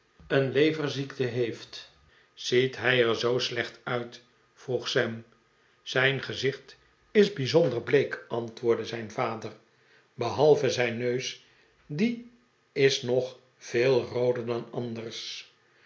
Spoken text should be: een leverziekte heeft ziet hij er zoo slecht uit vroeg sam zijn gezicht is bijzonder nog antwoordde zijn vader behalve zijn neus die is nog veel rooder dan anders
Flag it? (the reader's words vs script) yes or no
yes